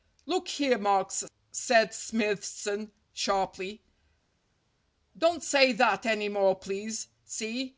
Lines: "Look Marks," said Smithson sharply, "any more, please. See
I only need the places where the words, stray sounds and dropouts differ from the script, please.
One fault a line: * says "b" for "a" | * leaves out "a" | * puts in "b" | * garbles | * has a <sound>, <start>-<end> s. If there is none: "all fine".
* puts in "here"
* puts in "don't say that"